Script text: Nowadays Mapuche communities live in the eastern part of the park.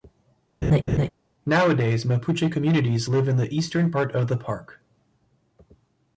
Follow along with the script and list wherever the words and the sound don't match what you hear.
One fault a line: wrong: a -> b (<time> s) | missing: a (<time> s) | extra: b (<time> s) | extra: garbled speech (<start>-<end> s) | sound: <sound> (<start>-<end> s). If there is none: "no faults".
sound: laugh (0.6-1.1 s)